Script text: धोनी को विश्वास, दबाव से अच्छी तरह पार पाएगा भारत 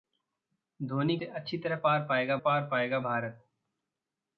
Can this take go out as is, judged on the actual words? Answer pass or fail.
fail